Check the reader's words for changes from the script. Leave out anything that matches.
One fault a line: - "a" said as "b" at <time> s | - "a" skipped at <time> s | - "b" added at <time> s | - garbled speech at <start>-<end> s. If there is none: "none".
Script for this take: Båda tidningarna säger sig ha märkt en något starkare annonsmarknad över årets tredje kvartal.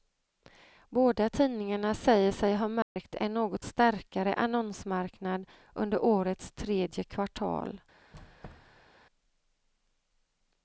- "över" said as "under" at 5.7 s